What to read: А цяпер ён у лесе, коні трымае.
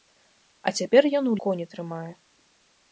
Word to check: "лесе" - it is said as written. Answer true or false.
false